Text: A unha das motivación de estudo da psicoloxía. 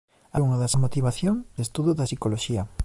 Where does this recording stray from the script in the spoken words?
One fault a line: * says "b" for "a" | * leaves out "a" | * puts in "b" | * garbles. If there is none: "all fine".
all fine